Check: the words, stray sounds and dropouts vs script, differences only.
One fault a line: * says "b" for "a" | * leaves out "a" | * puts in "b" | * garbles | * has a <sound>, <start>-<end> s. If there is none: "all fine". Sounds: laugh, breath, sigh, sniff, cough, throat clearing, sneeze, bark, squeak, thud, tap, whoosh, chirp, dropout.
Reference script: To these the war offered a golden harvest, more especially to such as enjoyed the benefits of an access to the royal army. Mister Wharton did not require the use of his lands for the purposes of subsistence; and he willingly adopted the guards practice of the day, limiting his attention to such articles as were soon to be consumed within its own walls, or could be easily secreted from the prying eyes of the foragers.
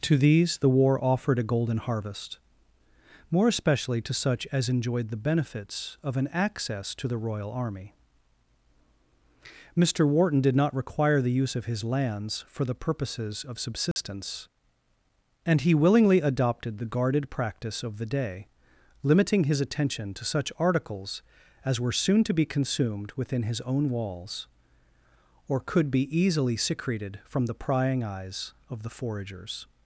* has a dropout, 13.9-14.0 s
* says "guarded" for "guards"
* says "his" for "its"